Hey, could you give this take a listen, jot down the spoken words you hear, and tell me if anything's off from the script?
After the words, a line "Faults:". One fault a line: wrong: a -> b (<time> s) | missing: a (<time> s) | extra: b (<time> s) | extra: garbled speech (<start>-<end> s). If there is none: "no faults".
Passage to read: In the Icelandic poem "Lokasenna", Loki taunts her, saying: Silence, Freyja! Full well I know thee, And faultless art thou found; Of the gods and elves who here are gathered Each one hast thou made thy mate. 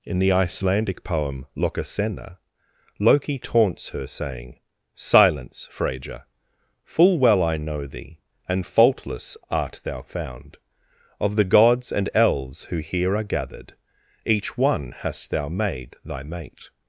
In the Icelandic poem "Lokasenna", Loki taunts her, saying: Silence, Freyja! Full well I know thee, And faultless art thou found; Of the gods and elves who here are gathered Each one hast thou made thy mate.
Faults:
no faults